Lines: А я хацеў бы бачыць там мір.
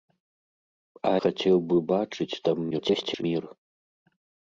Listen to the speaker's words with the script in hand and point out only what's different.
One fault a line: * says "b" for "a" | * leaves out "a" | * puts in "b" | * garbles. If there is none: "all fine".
* leaves out "я"
* garbles